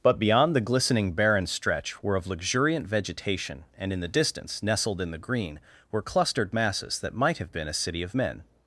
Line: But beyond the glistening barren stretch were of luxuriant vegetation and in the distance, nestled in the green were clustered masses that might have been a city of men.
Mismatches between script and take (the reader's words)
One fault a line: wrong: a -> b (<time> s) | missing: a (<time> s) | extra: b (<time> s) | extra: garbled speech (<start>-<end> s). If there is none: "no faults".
no faults